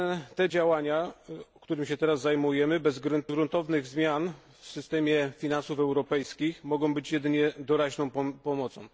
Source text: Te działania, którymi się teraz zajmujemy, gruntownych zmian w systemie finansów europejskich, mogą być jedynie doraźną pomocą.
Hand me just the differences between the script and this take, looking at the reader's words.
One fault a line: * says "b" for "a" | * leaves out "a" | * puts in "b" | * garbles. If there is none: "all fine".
all fine